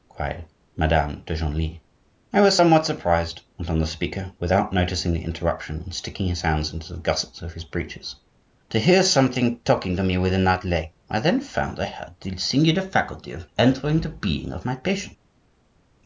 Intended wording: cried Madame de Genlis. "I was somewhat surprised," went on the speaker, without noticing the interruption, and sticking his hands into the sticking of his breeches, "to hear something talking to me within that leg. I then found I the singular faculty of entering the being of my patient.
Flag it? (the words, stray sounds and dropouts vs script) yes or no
yes